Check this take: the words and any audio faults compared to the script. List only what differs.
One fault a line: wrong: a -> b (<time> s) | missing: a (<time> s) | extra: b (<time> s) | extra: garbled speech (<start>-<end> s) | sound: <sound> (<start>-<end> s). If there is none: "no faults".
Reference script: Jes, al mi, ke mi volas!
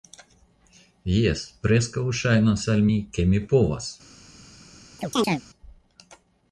extra: preskaŭ ŝajnas (1.7 s)
wrong: volas -> povas (3.5 s)
sound: chirp (5.0-5.4 s)